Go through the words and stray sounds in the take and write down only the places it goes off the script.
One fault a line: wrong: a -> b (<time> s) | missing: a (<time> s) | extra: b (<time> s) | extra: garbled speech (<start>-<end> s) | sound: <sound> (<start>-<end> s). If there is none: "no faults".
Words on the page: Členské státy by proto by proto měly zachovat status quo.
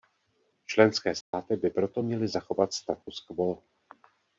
sound: dropout (1.2-1.3 s)
missing: by proto (2.0 s)
sound: dropout (3.0-3.1 s)